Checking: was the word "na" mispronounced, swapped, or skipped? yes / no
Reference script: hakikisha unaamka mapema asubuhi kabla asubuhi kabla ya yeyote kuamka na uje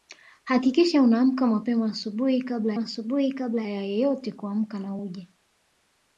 no